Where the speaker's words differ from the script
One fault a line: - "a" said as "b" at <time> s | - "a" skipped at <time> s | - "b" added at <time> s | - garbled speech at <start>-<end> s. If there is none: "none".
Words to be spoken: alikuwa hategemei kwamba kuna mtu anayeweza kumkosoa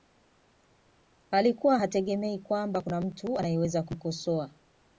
none